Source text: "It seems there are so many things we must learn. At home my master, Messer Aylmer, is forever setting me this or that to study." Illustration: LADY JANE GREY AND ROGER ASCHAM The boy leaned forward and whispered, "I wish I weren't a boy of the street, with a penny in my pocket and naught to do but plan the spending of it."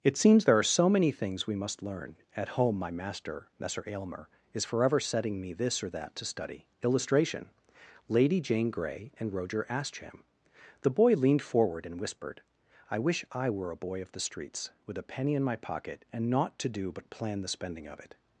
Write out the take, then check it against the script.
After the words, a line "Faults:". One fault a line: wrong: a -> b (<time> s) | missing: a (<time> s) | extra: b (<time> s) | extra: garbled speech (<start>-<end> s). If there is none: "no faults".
"It seems there are so many things we must learn. At home my master, Messer Aylmer, is forever setting me this or that to study." Illustration: LADY JANE GREY AND ROGER ASCHAM The boy leaned forward and whispered, "I wish I were a boy of the streets, with a penny in my pocket and naught to do but plan the spending of it."
Faults:
wrong: weren't -> were (13.5 s)
wrong: street -> streets (14.2 s)